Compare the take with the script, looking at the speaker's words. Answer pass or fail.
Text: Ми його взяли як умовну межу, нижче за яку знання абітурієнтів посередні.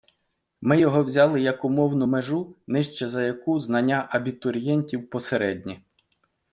pass